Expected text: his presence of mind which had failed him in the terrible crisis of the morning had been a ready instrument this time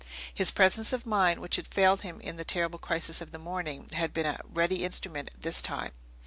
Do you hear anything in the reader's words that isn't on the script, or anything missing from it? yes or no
no